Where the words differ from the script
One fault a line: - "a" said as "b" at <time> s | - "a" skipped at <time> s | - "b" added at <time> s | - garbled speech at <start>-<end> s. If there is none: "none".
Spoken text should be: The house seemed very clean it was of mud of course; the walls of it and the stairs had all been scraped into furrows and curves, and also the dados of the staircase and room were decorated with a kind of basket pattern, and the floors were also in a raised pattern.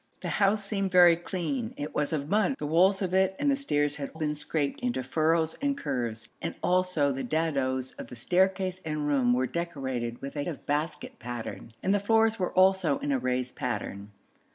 - "of course" skipped at 2.6 s
- "all" skipped at 4.1 s
- "kind" skipped at 10.4 s